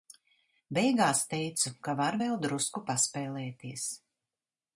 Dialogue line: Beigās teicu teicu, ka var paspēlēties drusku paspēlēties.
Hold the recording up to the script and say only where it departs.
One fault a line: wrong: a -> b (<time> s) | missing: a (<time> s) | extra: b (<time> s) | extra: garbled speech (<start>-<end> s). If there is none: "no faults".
missing: teicu (1.7 s)
wrong: paspēlēties -> vēl (2.2 s)